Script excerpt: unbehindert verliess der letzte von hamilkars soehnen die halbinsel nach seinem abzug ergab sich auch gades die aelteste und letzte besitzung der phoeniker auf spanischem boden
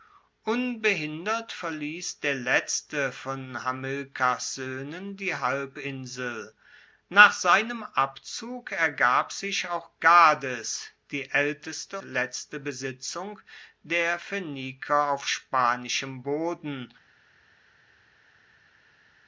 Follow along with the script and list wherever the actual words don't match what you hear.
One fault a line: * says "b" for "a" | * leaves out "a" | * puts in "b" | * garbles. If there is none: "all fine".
* leaves out "und"